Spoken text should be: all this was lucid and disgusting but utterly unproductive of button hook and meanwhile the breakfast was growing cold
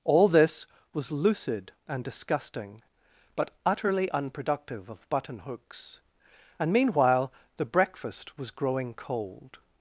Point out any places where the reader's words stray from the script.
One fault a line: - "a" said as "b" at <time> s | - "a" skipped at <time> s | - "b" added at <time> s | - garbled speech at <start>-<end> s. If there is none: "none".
- "hook" said as "hooks" at 5.4 s